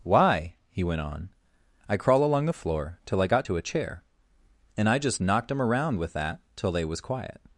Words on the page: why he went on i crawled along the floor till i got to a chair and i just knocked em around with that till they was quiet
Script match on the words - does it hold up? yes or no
no